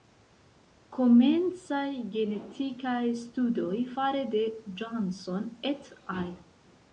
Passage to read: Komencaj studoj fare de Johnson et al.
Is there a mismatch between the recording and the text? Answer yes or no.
yes